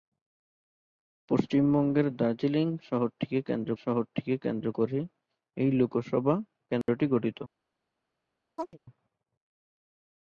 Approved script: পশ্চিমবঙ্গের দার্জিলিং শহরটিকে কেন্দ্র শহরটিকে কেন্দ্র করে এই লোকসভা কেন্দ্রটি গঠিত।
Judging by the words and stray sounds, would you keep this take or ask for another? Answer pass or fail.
fail